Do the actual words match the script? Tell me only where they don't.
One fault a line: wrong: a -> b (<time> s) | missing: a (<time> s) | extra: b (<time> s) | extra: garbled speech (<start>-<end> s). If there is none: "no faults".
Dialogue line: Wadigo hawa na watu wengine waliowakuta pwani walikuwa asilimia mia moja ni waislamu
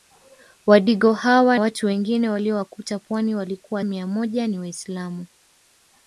missing: na (1.6 s)
missing: asilimia (3.8 s)